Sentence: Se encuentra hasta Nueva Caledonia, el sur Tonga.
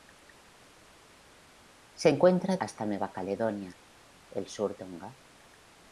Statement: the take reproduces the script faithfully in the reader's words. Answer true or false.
true